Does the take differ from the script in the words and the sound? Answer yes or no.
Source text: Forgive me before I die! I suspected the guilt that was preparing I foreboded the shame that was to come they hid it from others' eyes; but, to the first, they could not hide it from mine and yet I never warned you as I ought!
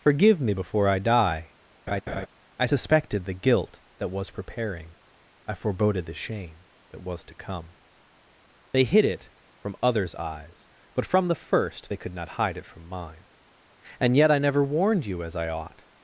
yes